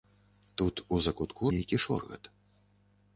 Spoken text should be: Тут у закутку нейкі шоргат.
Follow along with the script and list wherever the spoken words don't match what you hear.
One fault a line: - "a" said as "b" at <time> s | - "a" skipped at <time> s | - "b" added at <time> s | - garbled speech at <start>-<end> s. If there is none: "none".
none